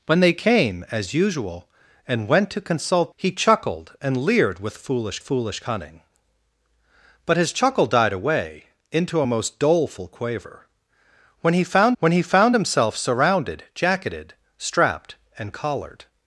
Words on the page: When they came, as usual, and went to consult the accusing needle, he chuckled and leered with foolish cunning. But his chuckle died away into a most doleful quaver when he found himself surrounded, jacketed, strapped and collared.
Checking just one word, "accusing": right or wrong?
wrong